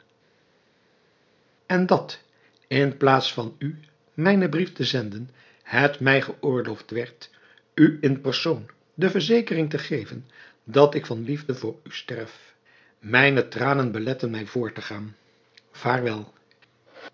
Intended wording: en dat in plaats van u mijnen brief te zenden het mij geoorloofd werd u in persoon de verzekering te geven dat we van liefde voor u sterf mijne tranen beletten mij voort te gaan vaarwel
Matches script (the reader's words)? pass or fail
fail